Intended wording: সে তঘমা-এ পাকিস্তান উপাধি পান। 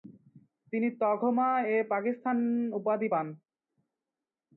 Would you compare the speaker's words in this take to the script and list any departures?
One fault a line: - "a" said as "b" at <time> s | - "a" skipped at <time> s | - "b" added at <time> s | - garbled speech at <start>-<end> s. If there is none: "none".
- "সে" said as "তিনি" at 0.7 s